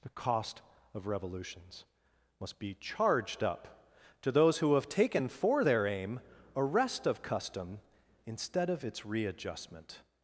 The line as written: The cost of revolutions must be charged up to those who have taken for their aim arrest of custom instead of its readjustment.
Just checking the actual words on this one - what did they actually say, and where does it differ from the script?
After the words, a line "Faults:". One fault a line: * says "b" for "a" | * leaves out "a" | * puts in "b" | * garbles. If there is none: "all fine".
The cost of revolutions must be charged up to those who have taken for their aim arrest of custom instead of its readjustment.
Faults:
all fine